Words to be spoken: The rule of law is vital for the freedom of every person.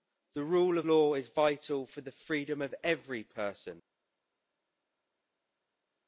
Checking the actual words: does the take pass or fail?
pass